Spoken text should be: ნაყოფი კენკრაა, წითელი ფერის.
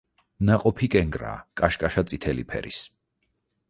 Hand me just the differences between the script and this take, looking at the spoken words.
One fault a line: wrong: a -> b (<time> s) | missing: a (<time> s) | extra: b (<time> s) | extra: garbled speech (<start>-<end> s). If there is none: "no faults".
extra: კაშკაშა (1.6 s)